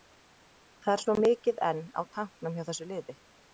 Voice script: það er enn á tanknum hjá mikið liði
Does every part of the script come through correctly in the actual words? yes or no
no